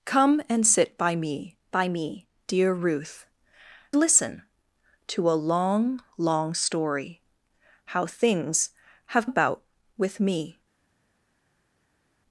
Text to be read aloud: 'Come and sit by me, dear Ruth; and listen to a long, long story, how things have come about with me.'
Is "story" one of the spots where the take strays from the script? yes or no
no